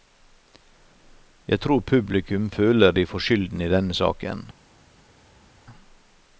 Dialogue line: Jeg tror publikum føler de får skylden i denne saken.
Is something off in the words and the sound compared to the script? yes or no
no